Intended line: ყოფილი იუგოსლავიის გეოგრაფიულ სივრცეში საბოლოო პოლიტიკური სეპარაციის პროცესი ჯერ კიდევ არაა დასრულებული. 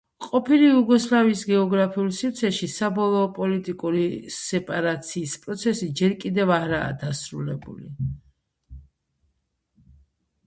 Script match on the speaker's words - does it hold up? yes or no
yes